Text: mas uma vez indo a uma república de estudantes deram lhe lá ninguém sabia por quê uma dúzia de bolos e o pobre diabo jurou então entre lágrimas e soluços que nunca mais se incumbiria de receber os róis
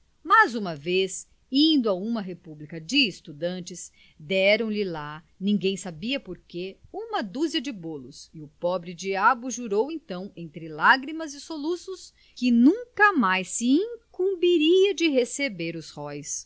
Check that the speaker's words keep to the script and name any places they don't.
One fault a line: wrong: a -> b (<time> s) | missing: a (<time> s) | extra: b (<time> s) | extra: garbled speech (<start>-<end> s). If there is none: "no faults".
no faults